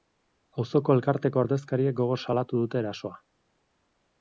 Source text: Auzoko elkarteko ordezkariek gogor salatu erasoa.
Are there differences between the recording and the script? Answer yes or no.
yes